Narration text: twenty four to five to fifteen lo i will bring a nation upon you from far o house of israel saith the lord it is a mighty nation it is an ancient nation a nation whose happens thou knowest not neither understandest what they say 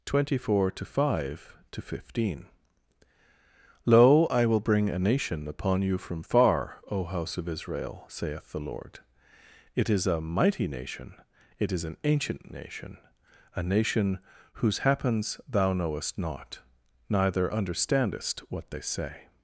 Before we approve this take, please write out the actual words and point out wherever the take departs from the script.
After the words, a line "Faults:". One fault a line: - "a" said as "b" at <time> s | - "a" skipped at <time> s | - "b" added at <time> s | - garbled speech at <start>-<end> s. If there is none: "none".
twenty four to five to fifteen lo i will bring a nation upon you from far o house of israel saith the lord it is a mighty nation it is an ancient nation a nation whose happens thou knowest not neither understandest what they say
Faults:
none